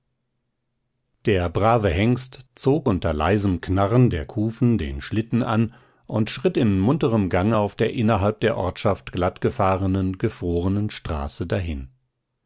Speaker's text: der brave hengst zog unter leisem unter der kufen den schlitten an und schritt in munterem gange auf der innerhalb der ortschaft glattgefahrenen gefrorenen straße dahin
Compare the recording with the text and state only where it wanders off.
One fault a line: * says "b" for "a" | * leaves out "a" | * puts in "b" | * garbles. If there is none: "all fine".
* says "knarren" for "unter"